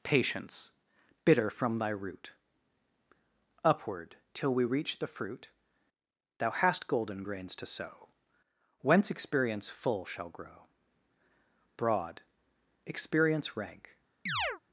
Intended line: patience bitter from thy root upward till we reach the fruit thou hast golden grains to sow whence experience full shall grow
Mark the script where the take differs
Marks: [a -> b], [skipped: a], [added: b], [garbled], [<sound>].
patience bitter from thy root upward till we reach the fruit thou hast golden grains to sow whence experience full shall grow [added: broad experience rank] [chirp]